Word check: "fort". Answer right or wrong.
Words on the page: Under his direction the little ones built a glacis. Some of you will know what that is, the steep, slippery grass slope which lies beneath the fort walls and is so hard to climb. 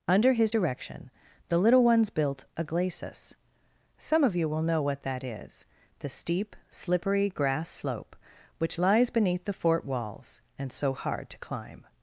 right